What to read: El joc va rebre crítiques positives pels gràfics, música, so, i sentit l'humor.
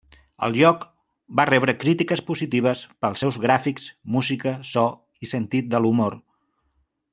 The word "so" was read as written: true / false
true